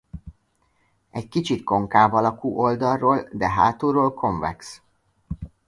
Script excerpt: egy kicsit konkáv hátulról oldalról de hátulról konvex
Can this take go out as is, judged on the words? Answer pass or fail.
fail